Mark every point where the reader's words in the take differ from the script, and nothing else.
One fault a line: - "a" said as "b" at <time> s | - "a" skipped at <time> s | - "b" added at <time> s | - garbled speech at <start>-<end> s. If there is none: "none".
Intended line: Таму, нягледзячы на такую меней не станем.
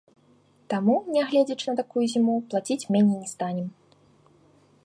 - "зіму плаціць" added at 2.2 s